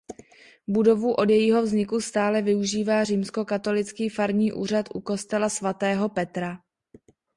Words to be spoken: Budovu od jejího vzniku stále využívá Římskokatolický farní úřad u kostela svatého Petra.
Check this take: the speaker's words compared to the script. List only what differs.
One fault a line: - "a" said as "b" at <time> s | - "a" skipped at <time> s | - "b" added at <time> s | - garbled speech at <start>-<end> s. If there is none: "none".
none